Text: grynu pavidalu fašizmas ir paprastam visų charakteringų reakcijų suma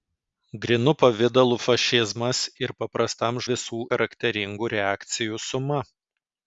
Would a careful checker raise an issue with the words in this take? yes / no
no